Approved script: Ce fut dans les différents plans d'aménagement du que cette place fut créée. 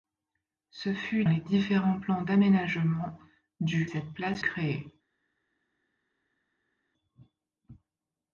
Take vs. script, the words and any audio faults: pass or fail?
fail